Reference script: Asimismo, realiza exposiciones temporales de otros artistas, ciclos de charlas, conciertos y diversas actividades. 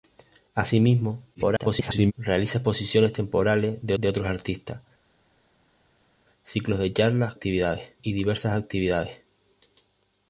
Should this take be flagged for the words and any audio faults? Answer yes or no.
yes